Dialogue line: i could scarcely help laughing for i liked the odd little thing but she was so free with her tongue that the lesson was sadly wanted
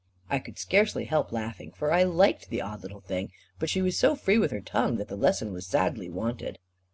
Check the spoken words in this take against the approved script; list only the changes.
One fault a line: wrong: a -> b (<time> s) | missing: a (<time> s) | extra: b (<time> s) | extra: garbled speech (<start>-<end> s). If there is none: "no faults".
no faults